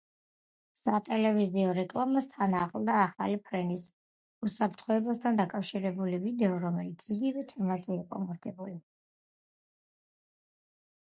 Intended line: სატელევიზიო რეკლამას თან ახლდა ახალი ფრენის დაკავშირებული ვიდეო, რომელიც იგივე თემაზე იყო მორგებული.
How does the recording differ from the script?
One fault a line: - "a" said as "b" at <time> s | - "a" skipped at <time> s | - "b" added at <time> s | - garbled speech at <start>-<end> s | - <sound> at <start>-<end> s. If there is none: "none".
- "უსაფრთხოებასთან" added at 4.5 s